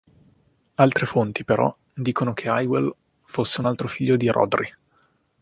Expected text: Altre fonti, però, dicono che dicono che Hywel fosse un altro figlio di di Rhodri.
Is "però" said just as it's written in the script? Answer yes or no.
yes